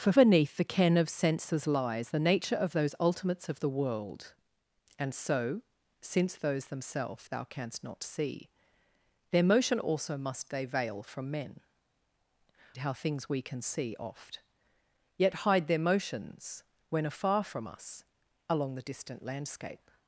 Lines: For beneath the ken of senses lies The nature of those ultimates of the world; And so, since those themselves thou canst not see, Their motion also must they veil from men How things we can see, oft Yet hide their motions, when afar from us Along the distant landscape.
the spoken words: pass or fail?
pass